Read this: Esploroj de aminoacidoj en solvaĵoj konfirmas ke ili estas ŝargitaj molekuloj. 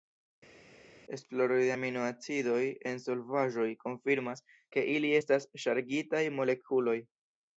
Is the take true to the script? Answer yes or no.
yes